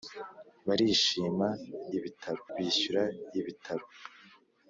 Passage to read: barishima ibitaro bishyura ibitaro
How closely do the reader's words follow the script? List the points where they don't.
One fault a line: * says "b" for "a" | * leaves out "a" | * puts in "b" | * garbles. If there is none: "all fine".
all fine